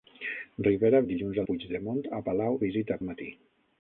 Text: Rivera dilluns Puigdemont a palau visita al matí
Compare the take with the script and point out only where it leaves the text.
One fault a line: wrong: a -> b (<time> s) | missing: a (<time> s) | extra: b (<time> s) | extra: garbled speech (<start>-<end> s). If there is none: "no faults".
no faults